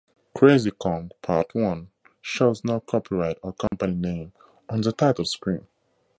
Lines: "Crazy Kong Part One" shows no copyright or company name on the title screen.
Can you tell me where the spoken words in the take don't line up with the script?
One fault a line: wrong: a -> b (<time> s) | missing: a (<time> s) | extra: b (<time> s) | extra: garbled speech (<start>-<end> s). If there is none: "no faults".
no faults